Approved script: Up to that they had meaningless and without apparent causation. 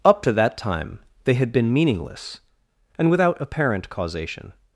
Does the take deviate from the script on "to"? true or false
false